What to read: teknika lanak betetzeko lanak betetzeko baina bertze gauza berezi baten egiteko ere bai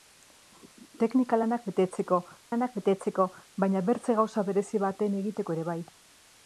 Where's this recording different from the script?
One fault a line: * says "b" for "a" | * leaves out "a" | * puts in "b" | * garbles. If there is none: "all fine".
all fine